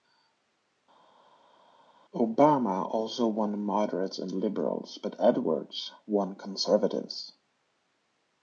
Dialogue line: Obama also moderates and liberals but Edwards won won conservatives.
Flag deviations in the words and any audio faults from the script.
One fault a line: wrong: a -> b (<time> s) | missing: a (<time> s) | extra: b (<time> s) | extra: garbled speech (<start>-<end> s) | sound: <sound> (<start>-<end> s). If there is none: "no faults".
extra: won (3.3 s)
missing: won (6.3 s)